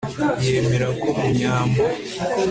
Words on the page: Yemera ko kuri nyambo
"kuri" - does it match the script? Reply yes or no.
no